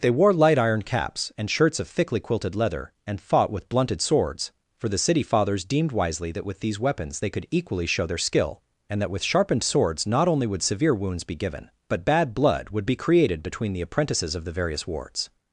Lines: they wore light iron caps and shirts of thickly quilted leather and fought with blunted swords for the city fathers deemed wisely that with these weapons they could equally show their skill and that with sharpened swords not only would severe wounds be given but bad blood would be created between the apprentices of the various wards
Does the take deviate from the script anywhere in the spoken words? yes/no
no